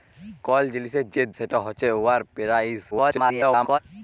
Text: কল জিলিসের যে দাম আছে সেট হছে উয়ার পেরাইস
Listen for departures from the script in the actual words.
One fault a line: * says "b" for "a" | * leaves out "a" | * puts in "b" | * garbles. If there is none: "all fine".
* leaves out "দাম আছে"
* garbles